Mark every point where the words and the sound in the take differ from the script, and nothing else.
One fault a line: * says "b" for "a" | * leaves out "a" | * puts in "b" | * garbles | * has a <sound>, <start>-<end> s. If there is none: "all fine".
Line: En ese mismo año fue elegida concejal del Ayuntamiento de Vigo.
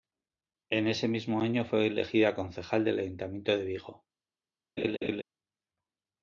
* has a laugh, 4.8-5.2 s